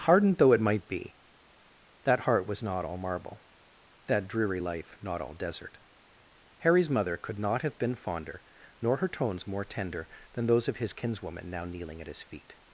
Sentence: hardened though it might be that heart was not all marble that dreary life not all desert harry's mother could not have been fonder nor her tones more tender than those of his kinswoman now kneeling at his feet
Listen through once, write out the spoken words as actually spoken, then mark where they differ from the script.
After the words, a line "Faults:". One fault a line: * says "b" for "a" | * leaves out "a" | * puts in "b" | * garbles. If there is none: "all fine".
hardened though it might be that heart was not all marble that dreary life not all desert harry's mother could not have been fonder nor her tones more tender than those of his kinswoman now kneeling at his feet
Faults:
all fine